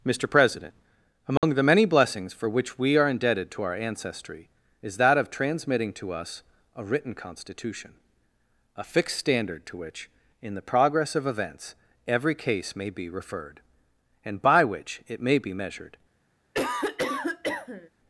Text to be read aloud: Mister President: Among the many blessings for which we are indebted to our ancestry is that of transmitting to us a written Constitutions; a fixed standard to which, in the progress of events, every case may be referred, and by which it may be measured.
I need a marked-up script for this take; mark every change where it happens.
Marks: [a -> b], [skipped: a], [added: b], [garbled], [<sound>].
Mister President: Among [dropout] the many blessings for which we are indebted to our ancestry is that of transmitting to us a written [Constitutions; -> Constitution] a fixed standard to which, in the progress of events, every case may be referred, and by which it may be measured. [cough]